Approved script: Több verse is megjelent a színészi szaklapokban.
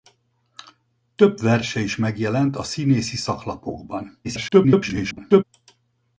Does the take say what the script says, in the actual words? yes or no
no